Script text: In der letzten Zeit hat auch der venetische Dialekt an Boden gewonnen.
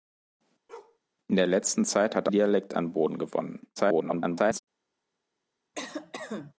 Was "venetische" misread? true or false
true